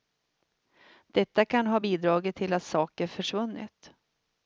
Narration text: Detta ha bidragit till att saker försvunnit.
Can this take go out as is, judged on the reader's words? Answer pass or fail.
fail